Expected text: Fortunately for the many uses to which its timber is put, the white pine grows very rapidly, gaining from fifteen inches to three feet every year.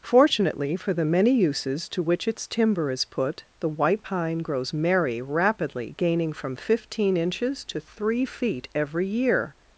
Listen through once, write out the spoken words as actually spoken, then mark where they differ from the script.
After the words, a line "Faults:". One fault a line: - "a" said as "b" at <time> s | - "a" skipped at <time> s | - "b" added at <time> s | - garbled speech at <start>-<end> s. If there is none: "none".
Fortunately for the many uses to which its timber is put, the white pine grows merry rapidly, gaining from fifteen inches to three feet every year.
Faults:
- "very" said as "merry" at 4.7 s